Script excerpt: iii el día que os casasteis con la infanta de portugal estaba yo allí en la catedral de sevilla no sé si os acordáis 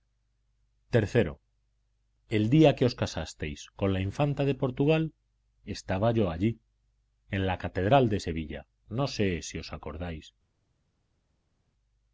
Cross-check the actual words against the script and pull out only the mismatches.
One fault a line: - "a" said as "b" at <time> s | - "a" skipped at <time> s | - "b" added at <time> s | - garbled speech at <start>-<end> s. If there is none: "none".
none